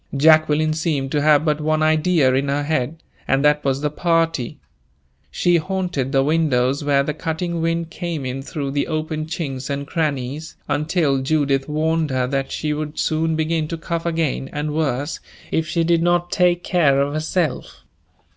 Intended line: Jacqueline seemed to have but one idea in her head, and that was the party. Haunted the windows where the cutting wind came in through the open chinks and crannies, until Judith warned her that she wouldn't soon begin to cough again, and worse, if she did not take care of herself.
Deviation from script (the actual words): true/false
true